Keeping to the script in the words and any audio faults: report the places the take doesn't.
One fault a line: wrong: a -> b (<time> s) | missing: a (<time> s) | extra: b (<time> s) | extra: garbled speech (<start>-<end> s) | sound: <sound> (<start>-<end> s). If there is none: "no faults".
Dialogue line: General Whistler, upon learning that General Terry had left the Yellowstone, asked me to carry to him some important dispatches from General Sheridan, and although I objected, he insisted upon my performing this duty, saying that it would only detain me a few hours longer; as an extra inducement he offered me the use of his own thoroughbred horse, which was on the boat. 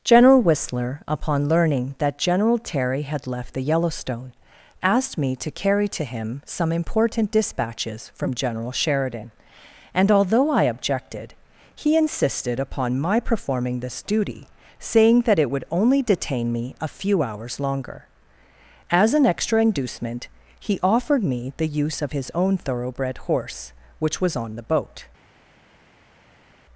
no faults